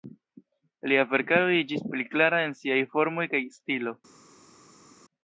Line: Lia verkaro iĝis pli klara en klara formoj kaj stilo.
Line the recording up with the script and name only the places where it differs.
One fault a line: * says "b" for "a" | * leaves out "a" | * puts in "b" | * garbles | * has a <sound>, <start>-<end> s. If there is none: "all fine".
* says "siaj" for "klara"